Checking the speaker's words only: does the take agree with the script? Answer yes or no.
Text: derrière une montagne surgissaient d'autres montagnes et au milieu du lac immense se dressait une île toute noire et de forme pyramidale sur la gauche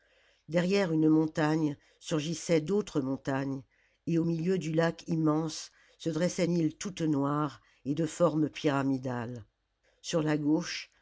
no